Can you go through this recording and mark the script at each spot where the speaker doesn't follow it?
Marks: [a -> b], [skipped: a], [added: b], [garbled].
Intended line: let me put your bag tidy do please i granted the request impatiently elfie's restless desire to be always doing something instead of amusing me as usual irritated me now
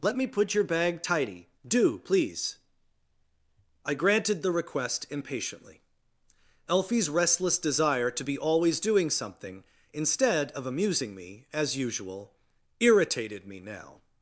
let me put your bag tidy do please i granted the request impatiently elfie's restless desire to be always doing something instead of amusing me as usual irritated me now